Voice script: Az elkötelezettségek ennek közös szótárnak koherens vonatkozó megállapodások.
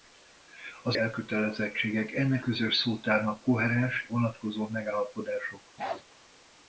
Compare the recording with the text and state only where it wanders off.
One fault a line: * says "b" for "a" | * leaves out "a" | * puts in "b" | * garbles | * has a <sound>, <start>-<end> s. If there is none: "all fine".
* has a bark, 5.8-6.0 s